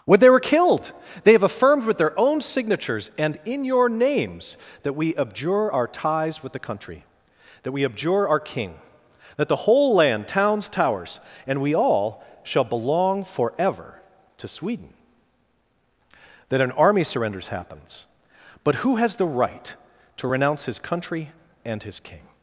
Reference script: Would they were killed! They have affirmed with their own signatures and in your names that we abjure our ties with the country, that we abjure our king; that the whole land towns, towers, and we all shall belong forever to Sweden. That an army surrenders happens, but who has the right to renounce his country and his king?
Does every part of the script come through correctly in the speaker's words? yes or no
no